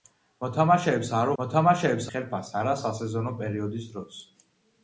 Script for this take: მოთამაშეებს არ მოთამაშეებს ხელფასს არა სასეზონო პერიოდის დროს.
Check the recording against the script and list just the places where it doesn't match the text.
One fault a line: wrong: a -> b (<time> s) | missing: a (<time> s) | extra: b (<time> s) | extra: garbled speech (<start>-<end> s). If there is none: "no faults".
no faults